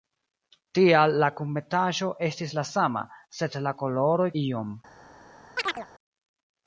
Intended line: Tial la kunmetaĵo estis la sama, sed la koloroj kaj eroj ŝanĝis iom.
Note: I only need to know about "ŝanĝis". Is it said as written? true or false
false